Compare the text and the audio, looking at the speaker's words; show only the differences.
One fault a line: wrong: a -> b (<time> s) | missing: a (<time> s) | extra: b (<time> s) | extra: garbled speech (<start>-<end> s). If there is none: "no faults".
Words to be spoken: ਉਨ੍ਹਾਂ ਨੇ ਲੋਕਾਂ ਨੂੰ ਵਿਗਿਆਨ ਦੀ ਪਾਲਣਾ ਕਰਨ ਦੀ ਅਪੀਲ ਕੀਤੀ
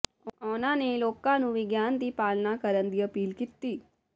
no faults